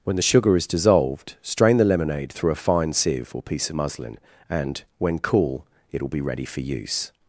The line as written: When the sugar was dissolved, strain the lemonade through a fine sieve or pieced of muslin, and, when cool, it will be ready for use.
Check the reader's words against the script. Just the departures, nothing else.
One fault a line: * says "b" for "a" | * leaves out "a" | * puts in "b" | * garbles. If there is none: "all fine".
* says "is" for "was"
* says "piece" for "pieced"